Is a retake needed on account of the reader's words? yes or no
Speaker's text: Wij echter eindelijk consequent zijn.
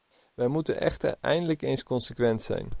yes